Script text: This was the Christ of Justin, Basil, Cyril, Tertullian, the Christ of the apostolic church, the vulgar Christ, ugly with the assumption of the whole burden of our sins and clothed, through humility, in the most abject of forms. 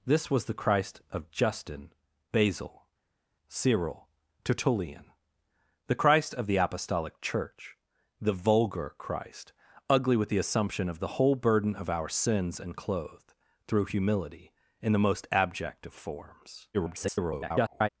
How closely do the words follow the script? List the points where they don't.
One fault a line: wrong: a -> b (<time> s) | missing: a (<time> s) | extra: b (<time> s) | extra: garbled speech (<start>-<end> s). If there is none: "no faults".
extra: garbled speech (16.7-17.9 s)